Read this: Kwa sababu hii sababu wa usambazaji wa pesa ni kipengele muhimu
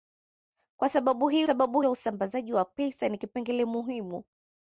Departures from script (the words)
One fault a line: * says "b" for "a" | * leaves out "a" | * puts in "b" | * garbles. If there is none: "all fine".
all fine